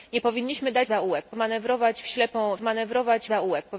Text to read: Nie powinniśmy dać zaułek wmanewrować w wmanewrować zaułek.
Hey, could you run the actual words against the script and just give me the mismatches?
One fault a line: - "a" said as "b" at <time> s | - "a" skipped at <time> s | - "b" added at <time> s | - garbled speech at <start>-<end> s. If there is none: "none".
none